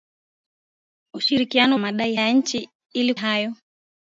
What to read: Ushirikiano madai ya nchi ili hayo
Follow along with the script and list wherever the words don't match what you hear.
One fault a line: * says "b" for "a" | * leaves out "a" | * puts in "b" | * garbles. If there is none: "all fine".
all fine